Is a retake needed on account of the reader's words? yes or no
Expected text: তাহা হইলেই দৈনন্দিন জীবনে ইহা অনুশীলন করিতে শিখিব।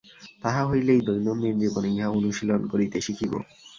no